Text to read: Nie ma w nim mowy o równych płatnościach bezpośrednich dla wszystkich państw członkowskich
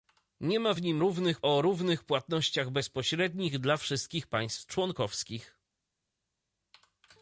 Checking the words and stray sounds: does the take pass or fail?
fail